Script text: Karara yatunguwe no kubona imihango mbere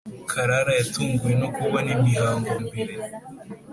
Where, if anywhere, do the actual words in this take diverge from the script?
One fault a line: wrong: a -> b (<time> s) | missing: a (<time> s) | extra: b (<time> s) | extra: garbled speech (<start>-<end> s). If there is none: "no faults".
no faults